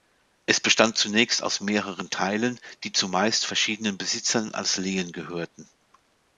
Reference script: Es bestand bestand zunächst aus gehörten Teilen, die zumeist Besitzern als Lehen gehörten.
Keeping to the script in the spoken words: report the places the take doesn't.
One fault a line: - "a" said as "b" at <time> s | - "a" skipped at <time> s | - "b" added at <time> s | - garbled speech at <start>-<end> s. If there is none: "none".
- "bestand" skipped at 1.0 s
- "gehörten" said as "mehreren" at 1.6 s
- "verschiedenen" added at 3.5 s